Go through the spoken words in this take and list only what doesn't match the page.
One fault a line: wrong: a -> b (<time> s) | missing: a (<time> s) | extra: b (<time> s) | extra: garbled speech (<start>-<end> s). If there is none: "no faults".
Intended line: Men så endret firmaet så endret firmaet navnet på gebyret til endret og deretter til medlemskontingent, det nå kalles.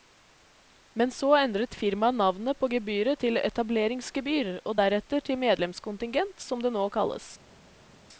missing: så endret firmaet (2.2 s)
wrong: endret -> etableringsgebyr (3.4 s)
extra: som (6.4 s)